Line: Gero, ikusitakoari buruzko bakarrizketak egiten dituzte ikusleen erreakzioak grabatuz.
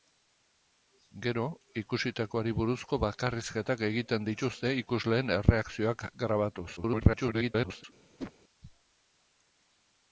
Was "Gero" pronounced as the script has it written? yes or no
yes